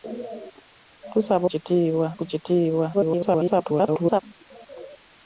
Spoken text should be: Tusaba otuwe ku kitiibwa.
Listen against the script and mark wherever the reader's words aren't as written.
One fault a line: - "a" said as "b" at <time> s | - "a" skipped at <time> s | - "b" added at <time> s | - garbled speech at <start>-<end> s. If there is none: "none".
- "otuwe" said as "kitiibwa" at 1.5 s
- garbled speech at 2.9-4.2 s